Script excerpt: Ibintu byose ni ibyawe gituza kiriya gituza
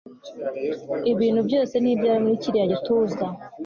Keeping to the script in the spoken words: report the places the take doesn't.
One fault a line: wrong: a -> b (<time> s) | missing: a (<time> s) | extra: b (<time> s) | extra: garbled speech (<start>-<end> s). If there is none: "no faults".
wrong: gituza -> muri (2.2 s)